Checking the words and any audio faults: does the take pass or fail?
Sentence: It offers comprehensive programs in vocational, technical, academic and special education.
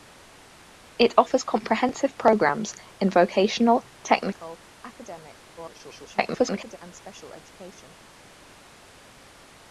fail